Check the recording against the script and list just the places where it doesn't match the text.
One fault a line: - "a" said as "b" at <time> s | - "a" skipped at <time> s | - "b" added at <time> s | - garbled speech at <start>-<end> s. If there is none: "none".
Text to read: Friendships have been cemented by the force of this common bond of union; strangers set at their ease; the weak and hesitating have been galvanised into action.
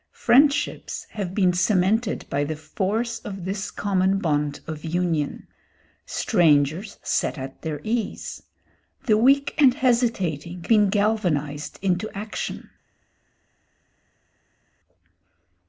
- "have" skipped at 10.7 s